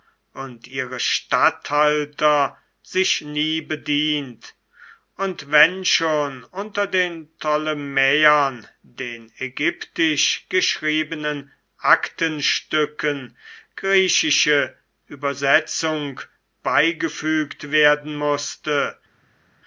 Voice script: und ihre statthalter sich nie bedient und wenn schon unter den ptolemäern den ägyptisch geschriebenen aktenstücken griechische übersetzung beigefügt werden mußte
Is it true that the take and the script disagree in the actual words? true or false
false